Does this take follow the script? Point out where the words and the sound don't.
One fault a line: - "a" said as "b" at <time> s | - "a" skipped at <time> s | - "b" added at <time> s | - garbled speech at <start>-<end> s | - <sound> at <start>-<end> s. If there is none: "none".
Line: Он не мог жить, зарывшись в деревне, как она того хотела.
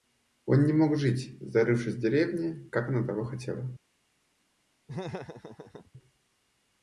- laugh at 4.9-5.9 s